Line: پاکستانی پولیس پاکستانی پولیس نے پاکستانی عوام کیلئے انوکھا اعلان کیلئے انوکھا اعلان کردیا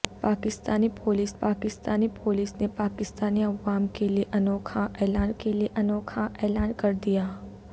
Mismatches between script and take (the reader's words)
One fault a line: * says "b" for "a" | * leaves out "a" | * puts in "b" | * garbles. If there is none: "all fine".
all fine